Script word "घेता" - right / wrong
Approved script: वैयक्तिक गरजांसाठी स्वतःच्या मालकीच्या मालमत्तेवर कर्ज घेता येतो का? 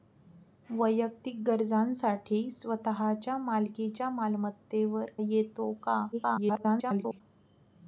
wrong